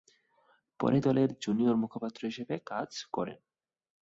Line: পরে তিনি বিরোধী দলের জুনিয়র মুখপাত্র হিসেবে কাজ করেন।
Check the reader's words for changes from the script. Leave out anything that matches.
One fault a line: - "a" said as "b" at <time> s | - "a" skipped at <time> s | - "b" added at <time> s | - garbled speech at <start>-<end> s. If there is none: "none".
- "তিনি বিরোধী" skipped at 1.0 s